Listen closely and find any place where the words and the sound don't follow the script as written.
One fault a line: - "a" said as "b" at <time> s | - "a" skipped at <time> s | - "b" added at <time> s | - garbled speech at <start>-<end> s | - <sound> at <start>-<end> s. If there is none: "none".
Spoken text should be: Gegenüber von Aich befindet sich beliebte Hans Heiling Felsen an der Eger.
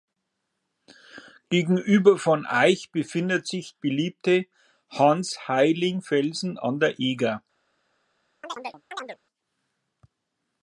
- chirp at 8.4-9.2 s